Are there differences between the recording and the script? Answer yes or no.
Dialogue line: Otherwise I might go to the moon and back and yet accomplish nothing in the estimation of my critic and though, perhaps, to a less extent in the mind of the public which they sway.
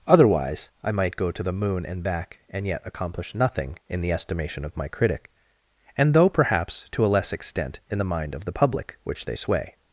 no